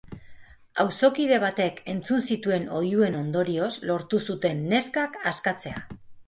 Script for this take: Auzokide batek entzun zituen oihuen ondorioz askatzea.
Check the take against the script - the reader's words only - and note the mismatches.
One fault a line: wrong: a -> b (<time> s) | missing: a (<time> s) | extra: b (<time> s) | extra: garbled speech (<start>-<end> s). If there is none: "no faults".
extra: lortu zuten neskak (3.9 s)